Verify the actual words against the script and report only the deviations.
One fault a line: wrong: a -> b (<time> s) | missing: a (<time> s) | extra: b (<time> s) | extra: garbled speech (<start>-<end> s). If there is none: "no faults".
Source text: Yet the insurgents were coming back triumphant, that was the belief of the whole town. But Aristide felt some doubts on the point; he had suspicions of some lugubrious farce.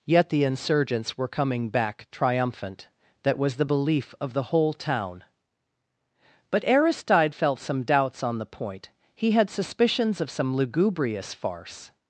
no faults